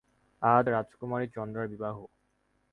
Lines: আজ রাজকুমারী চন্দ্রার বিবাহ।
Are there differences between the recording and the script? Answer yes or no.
no